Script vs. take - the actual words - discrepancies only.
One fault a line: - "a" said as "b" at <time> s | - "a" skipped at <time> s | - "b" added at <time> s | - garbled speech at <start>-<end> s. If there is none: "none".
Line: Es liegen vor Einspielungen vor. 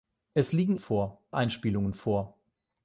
none